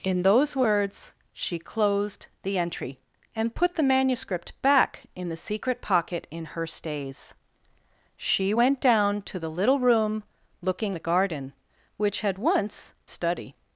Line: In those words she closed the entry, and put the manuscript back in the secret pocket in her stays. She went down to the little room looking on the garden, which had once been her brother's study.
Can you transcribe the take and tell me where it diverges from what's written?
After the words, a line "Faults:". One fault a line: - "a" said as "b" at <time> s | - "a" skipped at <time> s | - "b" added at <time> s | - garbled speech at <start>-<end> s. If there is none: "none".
In those words she closed the entry, and put the manuscript back in the secret pocket in her stays. She went down to the little room looking the garden, which had once study.
Faults:
- "on" skipped at 10.9 s
- "been her brother's" skipped at 12.9 s